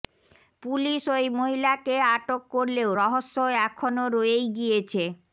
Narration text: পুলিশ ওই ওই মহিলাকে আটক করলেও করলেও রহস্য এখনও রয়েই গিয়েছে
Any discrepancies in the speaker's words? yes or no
yes